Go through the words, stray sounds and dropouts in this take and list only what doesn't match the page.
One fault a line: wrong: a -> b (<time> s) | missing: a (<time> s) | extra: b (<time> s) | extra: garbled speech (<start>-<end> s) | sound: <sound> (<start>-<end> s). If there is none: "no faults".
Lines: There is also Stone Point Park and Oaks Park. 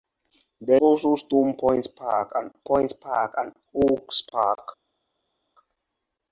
missing: is (0.8 s)
extra: Point Park and (2.6 s)